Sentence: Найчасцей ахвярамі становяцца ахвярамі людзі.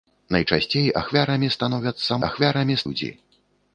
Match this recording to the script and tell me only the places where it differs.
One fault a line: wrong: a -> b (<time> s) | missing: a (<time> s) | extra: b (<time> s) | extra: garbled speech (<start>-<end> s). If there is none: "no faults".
no faults